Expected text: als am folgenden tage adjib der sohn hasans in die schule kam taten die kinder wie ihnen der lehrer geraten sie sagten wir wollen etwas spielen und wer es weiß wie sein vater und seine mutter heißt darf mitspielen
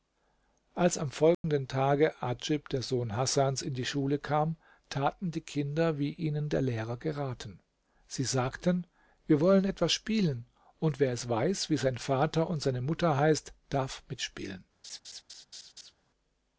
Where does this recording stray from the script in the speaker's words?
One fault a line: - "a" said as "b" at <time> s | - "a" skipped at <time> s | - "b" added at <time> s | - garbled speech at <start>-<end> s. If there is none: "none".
none